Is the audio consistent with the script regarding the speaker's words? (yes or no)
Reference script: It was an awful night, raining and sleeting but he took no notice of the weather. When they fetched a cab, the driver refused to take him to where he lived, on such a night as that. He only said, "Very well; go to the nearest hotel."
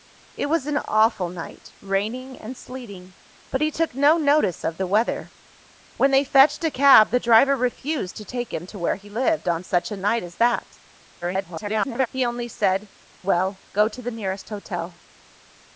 no